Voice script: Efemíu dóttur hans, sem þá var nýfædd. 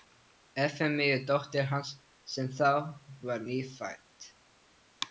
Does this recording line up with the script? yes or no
yes